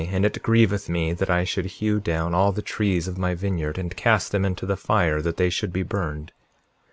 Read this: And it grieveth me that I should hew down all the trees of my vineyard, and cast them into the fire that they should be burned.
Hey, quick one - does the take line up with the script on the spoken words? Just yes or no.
yes